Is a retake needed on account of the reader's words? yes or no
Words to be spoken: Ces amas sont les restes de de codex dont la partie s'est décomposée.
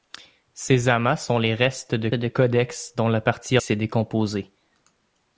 no